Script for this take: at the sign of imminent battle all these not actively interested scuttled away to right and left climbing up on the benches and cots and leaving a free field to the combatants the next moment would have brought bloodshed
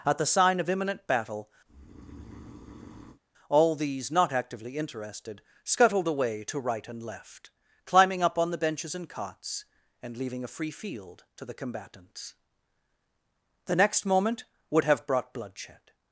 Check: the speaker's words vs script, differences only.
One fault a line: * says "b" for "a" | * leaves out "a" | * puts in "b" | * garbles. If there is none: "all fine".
all fine